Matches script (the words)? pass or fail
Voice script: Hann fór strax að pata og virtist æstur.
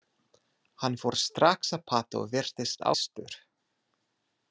pass